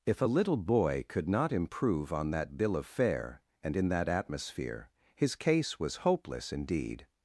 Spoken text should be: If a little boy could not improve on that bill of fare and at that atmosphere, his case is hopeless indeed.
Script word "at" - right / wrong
wrong